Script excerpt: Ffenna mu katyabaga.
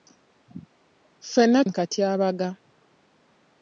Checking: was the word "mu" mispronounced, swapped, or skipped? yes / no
no